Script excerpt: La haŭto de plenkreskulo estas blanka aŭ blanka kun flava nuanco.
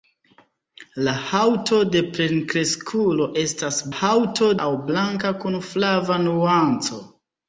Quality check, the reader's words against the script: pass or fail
fail